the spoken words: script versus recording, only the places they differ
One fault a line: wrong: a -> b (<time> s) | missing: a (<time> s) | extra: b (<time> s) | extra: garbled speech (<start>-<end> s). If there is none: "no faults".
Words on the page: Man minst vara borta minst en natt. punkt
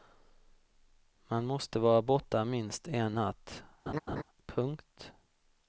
wrong: minst -> måste (1.4 s)